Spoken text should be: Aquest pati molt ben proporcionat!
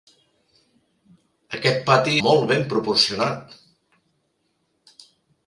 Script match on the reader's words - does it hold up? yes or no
yes